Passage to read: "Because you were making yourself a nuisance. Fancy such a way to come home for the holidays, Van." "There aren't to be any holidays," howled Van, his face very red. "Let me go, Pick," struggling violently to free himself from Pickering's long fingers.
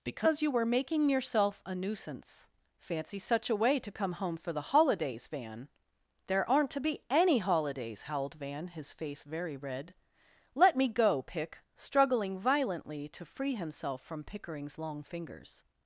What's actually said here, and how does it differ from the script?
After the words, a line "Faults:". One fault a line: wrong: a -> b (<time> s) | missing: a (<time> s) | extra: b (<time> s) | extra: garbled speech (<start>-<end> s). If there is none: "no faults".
"Because you were making yourself a nuisance. Fancy such a way to come home for the holidays, Van." "There aren't to be any holidays," howled Van, his face very red. "Let me go, Pick," struggling violently to free himself from Pickering's long fingers.
Faults:
no faults